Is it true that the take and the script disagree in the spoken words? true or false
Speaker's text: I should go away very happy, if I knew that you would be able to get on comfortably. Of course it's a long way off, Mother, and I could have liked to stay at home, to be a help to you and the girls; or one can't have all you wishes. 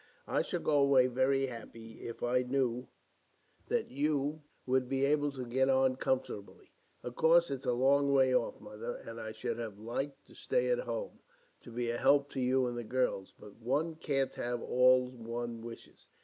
true